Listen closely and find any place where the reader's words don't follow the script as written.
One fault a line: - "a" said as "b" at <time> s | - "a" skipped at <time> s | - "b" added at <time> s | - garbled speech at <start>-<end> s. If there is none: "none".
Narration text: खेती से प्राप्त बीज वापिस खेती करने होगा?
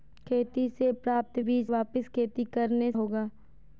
none